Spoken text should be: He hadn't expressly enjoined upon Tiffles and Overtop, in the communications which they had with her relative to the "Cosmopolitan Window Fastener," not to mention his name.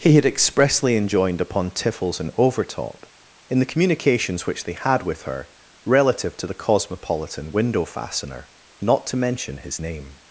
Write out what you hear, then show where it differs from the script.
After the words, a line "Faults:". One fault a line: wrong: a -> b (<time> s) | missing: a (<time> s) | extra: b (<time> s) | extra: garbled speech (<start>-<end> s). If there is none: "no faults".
He had expressly enjoined upon Tiffles and Overtop, in the communications which they had with her relative to the "Cosmopolitan Window Fastener," not to mention his name.
Faults:
wrong: hadn't -> had (0.1 s)